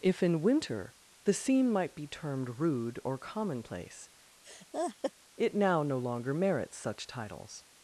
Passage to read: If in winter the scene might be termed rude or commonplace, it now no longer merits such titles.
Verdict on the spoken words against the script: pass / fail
pass